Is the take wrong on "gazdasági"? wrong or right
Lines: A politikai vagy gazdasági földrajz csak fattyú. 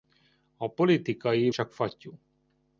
wrong